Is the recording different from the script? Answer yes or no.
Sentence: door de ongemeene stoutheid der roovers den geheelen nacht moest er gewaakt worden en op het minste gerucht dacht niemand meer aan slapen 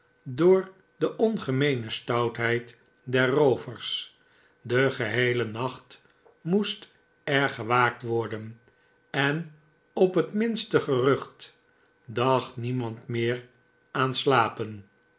no